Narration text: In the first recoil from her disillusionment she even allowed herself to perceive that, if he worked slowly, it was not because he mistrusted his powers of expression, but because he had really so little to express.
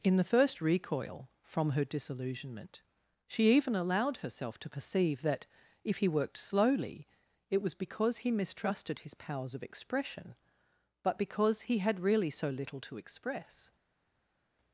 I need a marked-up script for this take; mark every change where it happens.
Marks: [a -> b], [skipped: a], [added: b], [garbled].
In the first recoil from her disillusionment she even allowed herself to perceive that, if he worked slowly, it was [skipped: not] because he mistrusted his powers of expression, but because he had really so little to express.